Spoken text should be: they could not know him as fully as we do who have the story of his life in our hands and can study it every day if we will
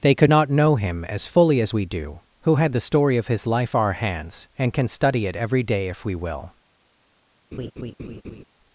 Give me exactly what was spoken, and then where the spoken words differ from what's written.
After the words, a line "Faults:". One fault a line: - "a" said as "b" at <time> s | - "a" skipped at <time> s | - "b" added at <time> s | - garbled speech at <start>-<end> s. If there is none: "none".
they could not know him as fully as we do who had the story of his life our hands and can study it every day if we will
Faults:
- "have" said as "had" at 2.6 s
- "in" skipped at 3.7 s